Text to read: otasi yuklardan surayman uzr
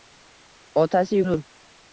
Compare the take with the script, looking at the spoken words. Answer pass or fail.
fail